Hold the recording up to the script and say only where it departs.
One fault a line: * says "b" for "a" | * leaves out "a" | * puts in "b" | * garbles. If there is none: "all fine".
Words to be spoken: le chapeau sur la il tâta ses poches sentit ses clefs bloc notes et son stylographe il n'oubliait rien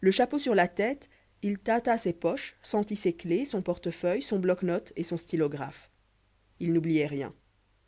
* puts in "tête"
* puts in "son portefeuille son"